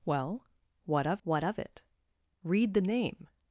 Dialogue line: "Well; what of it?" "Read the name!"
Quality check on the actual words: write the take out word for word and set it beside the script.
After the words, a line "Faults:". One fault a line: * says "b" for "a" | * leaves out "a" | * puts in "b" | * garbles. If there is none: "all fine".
"Well; what of what of it?" "Read the name!"
Faults:
* puts in "what of"